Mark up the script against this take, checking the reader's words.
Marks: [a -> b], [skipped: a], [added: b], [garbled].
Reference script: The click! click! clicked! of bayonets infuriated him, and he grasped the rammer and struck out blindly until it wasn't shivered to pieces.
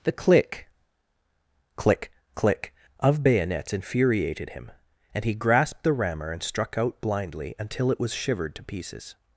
The click! click! [clicked! -> click] of bayonets infuriated him, and he grasped the rammer and struck out blindly until it [wasn't -> was] shivered to pieces.